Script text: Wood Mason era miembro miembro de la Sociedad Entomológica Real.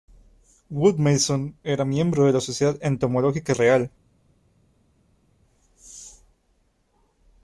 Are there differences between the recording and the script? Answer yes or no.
yes